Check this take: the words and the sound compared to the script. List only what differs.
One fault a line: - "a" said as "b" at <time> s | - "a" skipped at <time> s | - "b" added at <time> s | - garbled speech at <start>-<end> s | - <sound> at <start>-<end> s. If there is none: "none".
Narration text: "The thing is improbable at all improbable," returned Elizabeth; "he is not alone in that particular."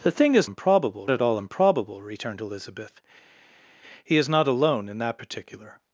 none